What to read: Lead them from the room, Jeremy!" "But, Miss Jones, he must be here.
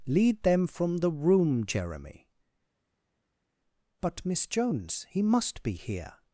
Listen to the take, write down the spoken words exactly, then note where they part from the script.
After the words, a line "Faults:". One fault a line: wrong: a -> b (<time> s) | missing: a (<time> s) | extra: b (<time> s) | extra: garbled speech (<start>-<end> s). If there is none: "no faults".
Lead them from the room, Jeremy!" "But, Miss Jones, he must be here.
Faults:
no faults